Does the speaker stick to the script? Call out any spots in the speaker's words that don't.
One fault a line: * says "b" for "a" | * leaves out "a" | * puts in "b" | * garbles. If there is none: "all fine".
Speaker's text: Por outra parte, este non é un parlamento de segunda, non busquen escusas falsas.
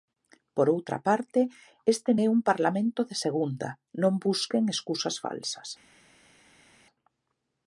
* leaves out "non"